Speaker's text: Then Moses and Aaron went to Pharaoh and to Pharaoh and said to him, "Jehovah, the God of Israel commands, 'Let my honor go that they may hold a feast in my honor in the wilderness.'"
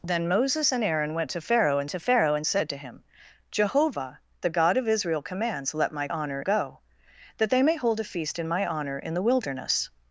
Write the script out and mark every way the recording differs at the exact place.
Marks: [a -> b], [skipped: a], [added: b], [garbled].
Then Moses and Aaron went to Pharaoh and to Pharaoh and said to him, "Jehovah, the God of Israel commands, 'Let my honor go that they may hold a feast in my honor in the wilderness.'"